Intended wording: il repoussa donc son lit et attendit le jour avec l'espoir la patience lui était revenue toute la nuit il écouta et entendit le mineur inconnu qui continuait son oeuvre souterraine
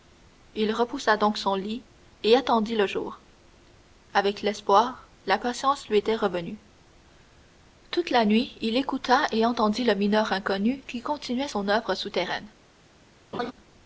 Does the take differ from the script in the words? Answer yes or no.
no